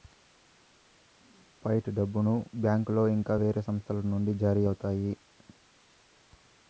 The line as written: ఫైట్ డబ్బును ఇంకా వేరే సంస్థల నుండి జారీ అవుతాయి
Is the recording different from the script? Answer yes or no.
yes